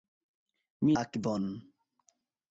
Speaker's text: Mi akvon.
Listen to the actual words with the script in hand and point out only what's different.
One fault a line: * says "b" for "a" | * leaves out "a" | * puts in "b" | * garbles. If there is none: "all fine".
all fine